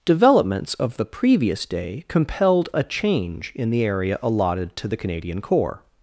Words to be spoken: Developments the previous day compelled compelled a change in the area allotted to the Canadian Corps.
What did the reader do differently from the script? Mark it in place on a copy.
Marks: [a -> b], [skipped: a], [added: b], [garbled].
Developments [added: of] the previous day compelled [skipped: compelled] a change in the area allotted to the Canadian Corps.